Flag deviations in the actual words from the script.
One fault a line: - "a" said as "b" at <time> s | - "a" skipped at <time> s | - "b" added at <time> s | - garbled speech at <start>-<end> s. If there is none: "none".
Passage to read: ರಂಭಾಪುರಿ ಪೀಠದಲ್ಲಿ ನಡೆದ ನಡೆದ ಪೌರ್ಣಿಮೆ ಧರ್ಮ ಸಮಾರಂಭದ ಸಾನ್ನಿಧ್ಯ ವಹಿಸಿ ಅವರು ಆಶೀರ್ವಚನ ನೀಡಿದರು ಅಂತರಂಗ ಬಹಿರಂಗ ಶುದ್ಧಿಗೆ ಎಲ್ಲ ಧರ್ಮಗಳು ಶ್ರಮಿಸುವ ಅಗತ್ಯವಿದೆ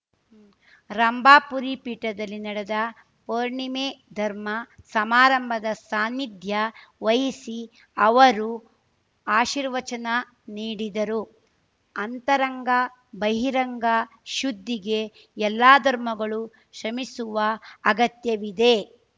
- "ನಡೆದ" skipped at 2.8 s